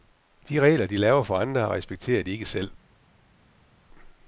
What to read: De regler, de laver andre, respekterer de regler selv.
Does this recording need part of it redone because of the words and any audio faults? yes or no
yes